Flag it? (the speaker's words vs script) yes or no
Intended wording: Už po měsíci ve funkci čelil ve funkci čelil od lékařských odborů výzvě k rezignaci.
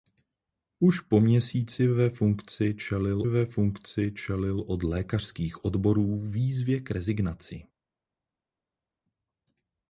no